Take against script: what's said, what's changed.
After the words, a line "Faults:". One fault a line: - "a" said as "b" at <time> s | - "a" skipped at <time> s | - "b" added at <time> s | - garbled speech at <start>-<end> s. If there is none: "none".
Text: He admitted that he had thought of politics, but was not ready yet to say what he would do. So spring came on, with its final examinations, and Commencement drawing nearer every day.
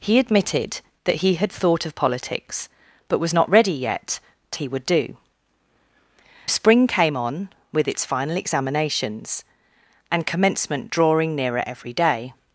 He admitted that he had thought of politics, but was not ready yet to he would do. Spring came on, with its final examinations, and Commencement drawing nearer every day.
Faults:
- "say what" skipped at 4.6 s
- "So" skipped at 5.2 s